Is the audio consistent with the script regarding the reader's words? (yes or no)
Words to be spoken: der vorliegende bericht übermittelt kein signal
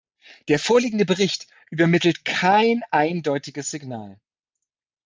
no